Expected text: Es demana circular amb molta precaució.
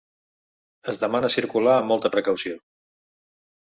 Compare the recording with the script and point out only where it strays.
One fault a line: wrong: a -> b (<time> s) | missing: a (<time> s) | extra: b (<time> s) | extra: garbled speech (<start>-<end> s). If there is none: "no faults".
no faults